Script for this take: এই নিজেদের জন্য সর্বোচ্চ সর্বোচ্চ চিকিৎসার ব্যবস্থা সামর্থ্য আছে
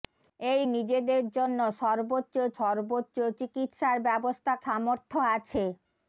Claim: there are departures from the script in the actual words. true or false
false